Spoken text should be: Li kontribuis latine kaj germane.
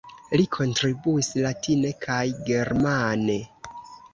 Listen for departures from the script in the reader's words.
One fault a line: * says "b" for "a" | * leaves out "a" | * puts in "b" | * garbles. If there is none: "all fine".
all fine